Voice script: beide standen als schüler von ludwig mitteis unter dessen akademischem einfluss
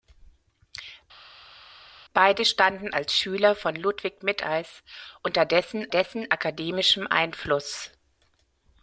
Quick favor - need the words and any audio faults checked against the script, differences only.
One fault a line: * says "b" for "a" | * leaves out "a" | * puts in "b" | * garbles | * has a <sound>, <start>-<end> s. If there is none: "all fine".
* puts in "dessen"